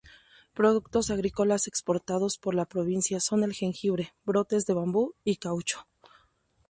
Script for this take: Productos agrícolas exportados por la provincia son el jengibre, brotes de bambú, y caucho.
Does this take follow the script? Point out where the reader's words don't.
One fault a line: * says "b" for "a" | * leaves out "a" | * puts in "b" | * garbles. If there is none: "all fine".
all fine